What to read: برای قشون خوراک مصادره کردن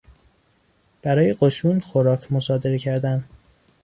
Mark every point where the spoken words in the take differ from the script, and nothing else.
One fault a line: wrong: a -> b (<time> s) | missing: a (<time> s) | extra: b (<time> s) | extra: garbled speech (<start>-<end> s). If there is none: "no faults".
no faults